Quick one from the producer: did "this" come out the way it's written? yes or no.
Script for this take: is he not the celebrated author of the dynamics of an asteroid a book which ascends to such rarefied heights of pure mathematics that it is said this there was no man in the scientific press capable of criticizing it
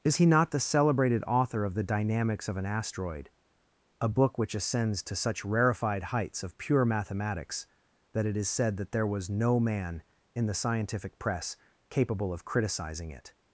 no